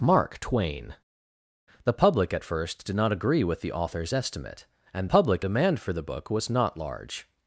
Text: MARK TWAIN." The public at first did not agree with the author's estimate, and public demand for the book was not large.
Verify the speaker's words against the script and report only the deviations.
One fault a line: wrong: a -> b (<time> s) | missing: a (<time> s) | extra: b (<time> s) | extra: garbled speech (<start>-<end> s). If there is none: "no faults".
no faults